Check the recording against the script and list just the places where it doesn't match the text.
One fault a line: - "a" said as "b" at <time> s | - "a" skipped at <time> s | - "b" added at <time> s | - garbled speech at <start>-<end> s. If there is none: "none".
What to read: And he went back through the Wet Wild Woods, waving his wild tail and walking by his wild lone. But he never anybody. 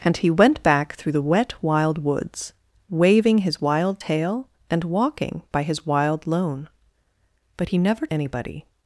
none